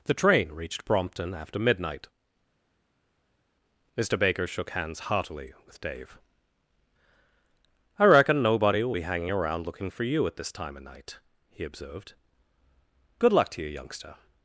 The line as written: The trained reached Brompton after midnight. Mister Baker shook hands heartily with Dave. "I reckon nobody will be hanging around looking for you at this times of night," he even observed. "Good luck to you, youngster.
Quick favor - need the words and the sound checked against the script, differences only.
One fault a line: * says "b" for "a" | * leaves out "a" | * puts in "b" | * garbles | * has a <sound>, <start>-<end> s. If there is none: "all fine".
* says "train" for "trained"
* says "time" for "times"
* leaves out "even"